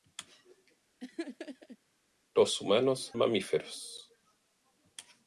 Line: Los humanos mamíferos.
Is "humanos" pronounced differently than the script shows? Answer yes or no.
no